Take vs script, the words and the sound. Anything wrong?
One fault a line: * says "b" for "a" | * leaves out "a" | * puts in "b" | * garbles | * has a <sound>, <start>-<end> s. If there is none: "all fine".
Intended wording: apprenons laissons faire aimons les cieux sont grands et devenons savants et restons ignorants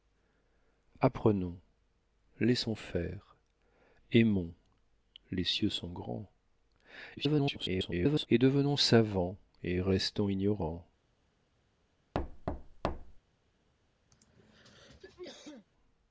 * garbles
* has a thud, 12.1-13.2 s
* has a throat clearing, 14.1-15.7 s